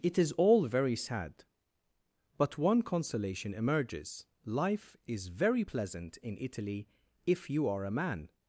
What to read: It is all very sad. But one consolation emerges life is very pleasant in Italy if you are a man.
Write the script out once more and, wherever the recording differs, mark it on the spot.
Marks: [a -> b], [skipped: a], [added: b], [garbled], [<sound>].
It is all very sad. But one consolation emerges life is very pleasant in Italy if you are a man.